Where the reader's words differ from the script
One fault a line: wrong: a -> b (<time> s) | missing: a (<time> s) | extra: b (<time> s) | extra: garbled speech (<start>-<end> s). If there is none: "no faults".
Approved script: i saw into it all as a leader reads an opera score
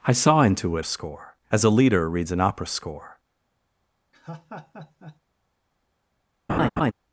wrong: all -> score (0.8 s)